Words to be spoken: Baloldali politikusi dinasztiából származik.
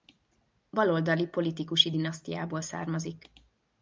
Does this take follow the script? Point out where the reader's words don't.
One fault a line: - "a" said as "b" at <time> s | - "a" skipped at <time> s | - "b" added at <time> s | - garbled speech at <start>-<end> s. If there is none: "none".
none